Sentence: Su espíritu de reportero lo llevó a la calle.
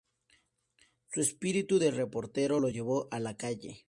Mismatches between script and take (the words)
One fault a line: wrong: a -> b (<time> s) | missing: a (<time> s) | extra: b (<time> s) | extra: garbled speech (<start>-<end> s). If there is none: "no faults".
no faults